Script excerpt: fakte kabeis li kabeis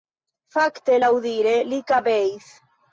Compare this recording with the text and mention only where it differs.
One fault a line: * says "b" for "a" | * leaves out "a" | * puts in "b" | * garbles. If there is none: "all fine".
* says "laŭdire" for "kabeis"